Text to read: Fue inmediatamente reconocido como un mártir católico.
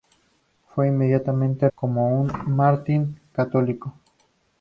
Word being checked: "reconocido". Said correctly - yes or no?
no